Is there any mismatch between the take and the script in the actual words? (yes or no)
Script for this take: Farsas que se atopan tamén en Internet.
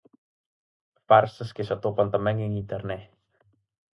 no